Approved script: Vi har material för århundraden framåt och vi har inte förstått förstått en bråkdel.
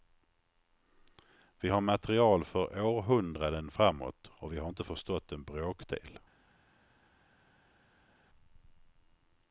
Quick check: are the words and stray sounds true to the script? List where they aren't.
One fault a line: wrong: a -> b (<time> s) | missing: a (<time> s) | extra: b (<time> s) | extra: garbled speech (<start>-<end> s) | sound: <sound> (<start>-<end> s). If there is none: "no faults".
missing: förstått (5.3 s)